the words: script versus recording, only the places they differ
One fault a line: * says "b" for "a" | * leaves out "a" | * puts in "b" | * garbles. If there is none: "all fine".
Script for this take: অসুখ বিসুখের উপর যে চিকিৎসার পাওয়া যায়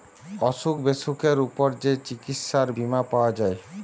* puts in "বীমা"